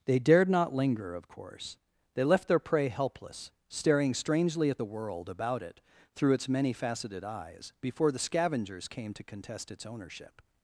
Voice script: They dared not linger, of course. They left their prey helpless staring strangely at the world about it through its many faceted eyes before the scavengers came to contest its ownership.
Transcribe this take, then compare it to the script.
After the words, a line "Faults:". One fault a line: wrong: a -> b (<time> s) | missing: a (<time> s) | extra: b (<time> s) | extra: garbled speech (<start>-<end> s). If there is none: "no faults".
They dared not linger, of course. They left their prey helpless staring strangely at the world about it through its many faceted eyes before the scavengers came to contest its ownership.
Faults:
no faults